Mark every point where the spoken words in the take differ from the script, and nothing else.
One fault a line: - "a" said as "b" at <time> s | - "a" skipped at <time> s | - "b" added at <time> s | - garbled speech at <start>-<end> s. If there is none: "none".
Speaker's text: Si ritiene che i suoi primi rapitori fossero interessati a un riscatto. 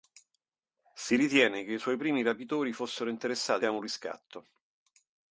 none